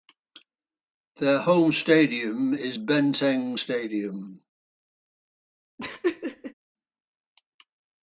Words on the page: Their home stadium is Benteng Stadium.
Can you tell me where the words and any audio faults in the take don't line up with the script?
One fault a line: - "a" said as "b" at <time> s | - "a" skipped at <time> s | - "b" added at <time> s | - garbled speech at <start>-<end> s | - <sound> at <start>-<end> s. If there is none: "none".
- laugh at 5.8-6.5 s